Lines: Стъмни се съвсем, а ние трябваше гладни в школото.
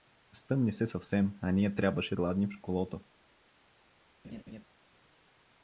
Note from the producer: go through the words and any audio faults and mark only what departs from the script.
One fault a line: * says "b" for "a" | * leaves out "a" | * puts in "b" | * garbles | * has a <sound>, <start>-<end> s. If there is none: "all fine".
* has a laugh, 4.2-4.6 s